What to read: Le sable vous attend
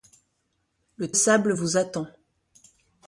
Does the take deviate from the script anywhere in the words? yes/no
no